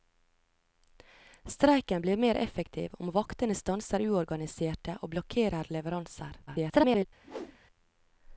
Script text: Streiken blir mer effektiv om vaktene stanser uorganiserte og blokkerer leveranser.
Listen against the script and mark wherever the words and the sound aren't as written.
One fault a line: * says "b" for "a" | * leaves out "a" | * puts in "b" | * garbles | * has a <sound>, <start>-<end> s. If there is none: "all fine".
* garbles
* has a whoosh, 7.2-7.6 s